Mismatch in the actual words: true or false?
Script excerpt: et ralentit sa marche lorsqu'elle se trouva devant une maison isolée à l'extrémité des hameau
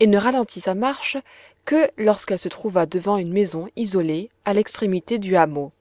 true